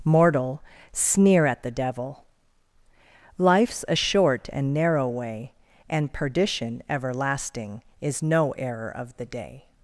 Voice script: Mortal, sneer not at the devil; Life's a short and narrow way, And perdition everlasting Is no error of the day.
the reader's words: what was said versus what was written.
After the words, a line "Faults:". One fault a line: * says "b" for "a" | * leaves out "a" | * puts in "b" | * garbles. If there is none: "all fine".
Mortal, sneer at the devil; Life's a short and narrow way, And perdition everlasting Is no error of the day.
Faults:
* leaves out "not"